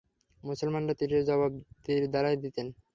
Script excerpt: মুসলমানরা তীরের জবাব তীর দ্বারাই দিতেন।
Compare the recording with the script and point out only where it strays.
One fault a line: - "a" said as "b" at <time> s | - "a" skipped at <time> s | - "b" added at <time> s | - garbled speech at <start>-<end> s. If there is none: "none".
none